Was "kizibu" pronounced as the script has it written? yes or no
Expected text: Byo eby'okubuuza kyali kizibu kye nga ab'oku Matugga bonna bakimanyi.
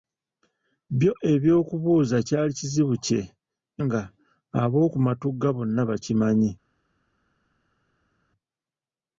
yes